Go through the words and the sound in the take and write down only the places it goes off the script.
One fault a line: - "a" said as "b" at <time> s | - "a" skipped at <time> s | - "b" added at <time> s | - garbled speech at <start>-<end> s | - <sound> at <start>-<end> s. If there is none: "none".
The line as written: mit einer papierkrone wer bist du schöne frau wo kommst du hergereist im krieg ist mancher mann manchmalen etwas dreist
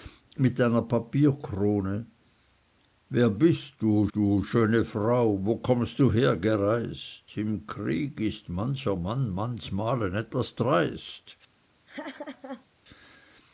- "du" added at 4.1 s
- laugh at 11.9-12.7 s